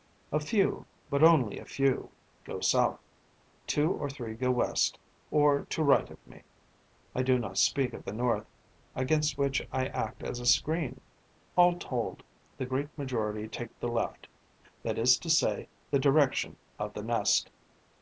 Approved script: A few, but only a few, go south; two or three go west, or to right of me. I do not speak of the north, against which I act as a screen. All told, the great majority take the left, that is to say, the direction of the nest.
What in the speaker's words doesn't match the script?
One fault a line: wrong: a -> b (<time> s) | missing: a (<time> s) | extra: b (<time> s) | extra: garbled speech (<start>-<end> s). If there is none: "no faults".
no faults